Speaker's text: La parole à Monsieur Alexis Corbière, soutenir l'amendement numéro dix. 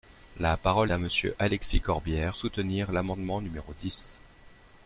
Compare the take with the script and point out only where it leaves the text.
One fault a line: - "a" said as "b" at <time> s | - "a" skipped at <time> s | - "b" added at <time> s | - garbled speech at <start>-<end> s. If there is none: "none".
none